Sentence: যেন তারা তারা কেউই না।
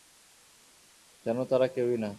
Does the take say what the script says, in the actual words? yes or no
no